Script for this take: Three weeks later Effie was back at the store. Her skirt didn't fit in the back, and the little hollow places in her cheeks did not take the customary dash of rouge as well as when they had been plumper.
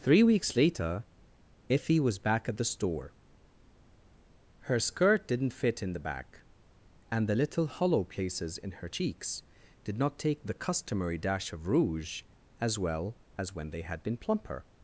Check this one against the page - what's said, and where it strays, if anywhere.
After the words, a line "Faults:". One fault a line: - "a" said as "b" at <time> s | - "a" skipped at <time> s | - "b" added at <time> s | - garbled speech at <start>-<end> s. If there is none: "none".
Three weeks later Effie was back at the store. Her skirt didn't fit in the back, and the little hollow places in her cheeks did not take the customary dash of rouge as well as when they had been plumper.
Faults:
none